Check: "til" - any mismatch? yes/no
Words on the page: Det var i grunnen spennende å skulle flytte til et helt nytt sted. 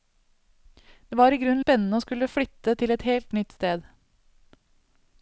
no